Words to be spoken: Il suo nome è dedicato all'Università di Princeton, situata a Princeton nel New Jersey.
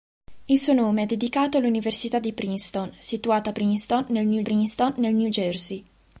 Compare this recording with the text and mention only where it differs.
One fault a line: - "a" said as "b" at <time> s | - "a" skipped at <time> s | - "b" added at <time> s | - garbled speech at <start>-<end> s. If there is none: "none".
- "Princeton nel New" added at 4.4 s